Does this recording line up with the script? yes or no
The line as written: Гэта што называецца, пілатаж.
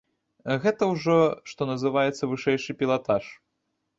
no